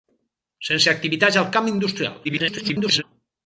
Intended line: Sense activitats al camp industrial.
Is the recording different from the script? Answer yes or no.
yes